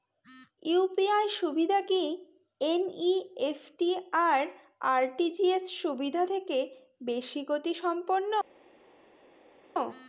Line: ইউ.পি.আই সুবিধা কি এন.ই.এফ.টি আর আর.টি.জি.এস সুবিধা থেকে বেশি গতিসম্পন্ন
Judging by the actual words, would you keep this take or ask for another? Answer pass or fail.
pass